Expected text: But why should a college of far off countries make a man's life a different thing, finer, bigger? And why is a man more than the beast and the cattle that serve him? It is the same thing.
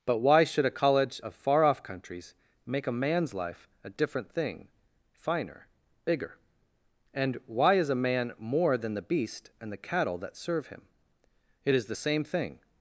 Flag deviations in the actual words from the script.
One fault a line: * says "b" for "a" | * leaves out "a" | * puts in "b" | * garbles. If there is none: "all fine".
all fine